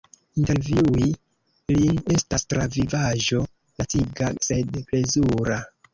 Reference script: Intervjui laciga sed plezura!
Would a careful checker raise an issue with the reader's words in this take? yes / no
yes